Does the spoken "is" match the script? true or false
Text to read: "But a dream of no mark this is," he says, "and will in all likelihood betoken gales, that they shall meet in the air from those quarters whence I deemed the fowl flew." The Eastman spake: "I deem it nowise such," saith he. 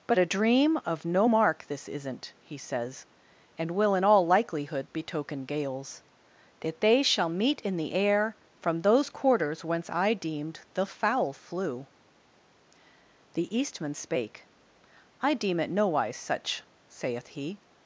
false